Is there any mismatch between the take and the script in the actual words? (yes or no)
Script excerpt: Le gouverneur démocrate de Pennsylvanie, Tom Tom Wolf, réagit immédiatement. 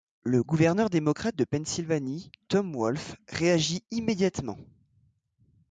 yes